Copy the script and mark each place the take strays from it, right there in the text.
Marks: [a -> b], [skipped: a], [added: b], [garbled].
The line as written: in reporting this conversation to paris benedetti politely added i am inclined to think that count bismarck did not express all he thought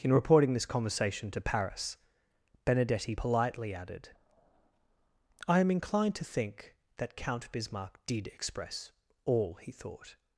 in reporting this conversation to paris benedetti politely added i am inclined to think that count bismarck did [skipped: not] express all he thought